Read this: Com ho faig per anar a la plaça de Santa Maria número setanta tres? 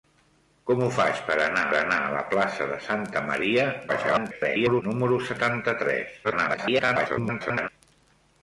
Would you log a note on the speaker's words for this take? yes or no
yes